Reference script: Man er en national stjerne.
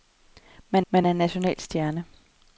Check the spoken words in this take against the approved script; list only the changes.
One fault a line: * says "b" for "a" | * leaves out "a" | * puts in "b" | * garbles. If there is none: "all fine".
* puts in "man"